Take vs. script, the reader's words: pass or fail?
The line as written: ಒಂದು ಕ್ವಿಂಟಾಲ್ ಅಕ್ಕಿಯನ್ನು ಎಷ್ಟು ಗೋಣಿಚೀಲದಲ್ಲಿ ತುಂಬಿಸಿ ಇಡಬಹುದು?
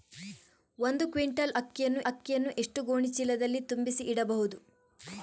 fail